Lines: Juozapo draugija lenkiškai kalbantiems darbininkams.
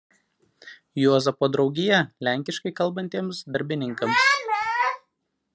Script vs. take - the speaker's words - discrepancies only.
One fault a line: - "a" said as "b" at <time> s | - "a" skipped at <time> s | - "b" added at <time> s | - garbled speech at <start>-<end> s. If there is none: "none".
none